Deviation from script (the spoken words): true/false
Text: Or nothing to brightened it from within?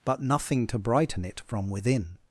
true